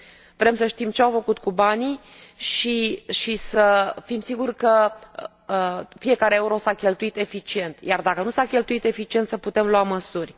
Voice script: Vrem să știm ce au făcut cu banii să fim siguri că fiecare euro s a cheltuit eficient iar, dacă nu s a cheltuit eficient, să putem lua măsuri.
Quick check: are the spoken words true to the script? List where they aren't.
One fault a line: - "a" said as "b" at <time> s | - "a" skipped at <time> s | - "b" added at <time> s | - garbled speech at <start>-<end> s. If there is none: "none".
- "și" added at 2.4 s